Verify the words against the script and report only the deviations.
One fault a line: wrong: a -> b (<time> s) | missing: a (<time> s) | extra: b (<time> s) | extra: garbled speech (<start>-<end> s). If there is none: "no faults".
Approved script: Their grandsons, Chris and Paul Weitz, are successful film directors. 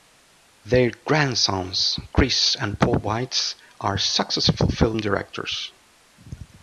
no faults